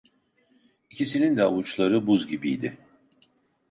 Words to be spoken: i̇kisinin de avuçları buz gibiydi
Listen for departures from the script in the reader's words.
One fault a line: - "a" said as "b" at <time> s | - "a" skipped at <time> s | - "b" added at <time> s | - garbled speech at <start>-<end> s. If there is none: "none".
none